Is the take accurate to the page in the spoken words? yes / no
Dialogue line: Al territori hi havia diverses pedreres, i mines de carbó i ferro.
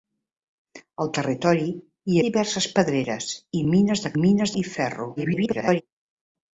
no